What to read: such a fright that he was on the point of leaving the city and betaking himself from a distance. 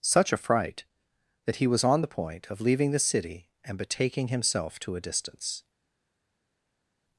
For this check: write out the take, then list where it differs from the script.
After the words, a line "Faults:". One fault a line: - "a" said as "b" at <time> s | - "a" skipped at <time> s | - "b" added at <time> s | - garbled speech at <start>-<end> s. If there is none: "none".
such a fright that he was on the point of leaving the city and betaking himself to a distance.
Faults:
- "from" said as "to" at 4.8 s